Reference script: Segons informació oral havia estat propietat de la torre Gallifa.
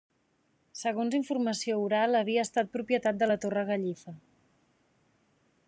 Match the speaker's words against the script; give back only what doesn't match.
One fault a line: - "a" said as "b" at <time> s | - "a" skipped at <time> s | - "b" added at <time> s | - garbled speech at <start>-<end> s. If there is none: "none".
none